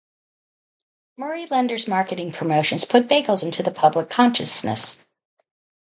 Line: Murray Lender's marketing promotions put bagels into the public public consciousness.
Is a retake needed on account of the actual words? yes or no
yes